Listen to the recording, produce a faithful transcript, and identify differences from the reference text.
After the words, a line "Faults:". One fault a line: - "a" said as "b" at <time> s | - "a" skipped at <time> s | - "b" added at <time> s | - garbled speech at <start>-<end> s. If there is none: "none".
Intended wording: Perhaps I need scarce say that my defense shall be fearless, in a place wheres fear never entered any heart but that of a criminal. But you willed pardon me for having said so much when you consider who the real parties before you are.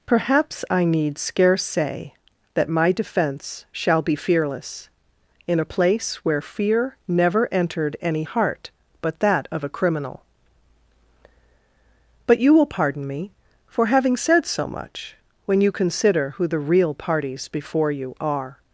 Perhaps I need scarce say that my defense shall be fearless, in a place where fear never entered any heart but that of a criminal. But you will pardon me for having said so much when you consider who the real parties before you are.
Faults:
- "wheres" said as "where" at 6.2 s
- "willed" said as "will" at 12.5 s